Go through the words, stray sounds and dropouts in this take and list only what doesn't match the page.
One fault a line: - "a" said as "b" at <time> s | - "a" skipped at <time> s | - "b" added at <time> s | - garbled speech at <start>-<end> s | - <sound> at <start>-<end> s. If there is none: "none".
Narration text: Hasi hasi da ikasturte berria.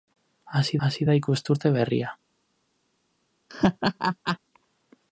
- laugh at 3.5-4.4 s